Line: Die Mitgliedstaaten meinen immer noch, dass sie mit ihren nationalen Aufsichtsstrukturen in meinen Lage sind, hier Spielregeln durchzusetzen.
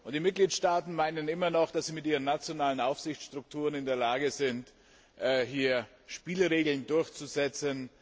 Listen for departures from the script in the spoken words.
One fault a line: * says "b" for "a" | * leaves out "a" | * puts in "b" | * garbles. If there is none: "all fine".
* says "der" for "meinen"